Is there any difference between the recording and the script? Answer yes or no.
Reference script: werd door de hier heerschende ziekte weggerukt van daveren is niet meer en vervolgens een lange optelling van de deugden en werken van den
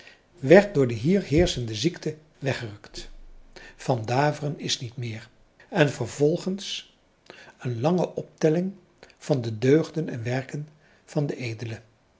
no